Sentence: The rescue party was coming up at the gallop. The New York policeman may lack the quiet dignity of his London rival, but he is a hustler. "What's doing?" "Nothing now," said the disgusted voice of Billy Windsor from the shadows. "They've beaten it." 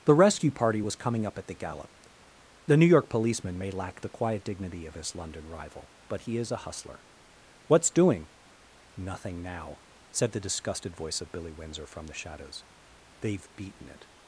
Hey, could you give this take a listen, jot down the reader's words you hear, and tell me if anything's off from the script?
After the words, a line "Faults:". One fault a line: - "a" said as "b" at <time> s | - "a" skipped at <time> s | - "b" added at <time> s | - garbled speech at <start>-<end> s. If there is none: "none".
The rescue party was coming up at the gallop. The New York policeman may lack the quiet dignity of his London rival, but he is a hustler. "What's doing?" "Nothing now," said the disgusted voice of Billy Windsor from the shadows. "They've beaten it."
Faults:
none